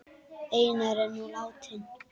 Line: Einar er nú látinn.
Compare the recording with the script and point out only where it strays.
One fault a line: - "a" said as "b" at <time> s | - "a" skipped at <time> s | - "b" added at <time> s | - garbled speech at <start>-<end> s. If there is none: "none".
none